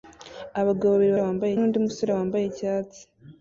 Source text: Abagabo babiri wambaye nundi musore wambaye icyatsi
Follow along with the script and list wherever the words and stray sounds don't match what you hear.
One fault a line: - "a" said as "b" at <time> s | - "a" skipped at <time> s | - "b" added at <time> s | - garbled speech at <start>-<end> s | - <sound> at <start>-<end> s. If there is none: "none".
none